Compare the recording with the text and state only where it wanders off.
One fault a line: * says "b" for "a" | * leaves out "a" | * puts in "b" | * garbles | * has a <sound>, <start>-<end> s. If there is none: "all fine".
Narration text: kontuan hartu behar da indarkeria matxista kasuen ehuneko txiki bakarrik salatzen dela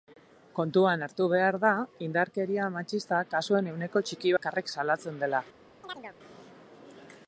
* has a chirp, 5.8-6.2 s